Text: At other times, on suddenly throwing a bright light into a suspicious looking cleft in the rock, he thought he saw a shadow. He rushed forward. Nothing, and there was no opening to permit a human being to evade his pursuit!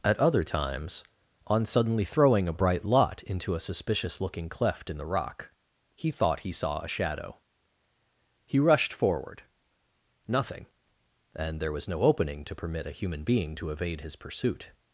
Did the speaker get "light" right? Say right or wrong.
wrong